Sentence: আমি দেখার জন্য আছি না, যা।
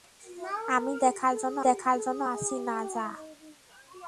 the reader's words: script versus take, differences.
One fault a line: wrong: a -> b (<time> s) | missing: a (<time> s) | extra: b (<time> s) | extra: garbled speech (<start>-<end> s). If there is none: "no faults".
extra: দেখার জন্য (1.7 s)